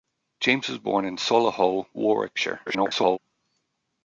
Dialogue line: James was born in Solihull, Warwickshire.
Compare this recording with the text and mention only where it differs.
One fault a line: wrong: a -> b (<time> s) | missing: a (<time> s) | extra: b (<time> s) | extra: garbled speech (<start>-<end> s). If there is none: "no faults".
extra: garbled speech (2.7-3.2 s)